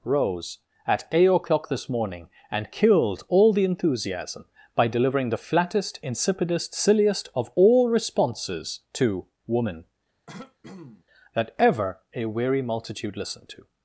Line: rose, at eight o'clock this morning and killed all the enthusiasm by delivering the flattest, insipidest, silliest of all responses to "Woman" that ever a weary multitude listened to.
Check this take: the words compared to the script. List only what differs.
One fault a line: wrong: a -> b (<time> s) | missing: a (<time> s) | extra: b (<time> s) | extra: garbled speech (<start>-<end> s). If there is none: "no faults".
no faults